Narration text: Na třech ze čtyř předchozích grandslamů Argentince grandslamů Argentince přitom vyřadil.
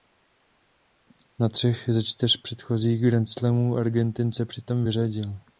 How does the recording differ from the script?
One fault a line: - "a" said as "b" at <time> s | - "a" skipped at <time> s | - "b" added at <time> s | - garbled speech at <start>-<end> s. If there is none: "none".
- "grandslamů Argentince" skipped at 4.4 s